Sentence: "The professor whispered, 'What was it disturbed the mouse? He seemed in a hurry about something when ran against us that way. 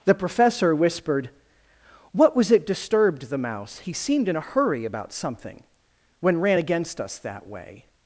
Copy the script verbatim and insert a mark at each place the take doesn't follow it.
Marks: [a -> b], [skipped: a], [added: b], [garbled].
"The professor whispered, 'What was it disturbed the mouse? He seemed in a hurry about something when ran against us that way.